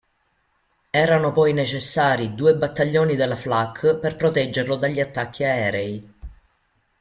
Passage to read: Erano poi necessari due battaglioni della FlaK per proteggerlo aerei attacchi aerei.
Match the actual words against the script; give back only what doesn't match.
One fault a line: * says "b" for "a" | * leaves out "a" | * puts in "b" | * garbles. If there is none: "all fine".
* says "dagli" for "aerei"